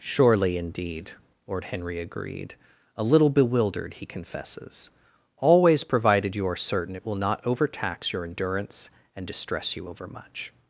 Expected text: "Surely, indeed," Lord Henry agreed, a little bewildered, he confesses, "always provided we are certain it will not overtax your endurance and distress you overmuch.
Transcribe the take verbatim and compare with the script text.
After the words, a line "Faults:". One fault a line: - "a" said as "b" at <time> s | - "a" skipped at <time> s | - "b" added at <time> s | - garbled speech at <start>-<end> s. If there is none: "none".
"Surely, indeed," Lord Henry agreed, a little bewildered, he confesses, "always provided you are certain it will not overtax your endurance and distress you overmuch.
Faults:
- "we" said as "you" at 6.3 s